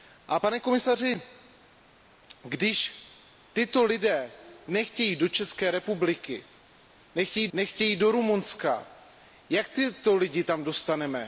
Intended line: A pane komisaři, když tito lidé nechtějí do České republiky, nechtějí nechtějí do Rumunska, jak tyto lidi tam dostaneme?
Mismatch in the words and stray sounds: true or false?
false